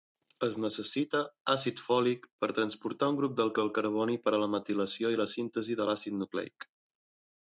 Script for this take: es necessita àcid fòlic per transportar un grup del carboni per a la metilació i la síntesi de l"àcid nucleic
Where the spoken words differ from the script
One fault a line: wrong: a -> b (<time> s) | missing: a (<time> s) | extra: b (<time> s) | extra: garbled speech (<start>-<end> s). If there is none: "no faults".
extra: del (3.6 s)